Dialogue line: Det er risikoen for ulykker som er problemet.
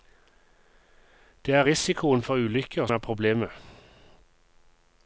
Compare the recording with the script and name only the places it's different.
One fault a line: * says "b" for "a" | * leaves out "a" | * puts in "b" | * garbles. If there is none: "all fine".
* leaves out "som"